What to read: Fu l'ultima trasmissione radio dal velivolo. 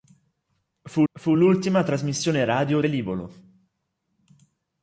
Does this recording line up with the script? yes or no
no